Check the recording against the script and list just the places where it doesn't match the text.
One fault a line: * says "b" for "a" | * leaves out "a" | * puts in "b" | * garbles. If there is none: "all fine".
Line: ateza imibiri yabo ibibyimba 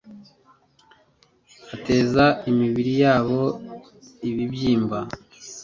all fine